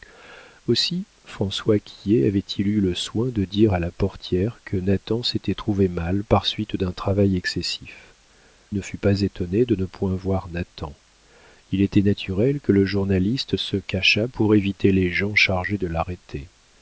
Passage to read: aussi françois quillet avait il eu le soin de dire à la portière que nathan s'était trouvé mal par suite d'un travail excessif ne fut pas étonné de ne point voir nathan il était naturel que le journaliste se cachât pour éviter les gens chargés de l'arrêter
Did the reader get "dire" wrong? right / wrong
right